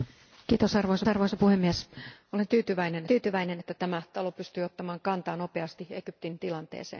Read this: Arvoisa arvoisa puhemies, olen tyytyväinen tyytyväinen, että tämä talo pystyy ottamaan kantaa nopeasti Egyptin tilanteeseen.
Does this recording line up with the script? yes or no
yes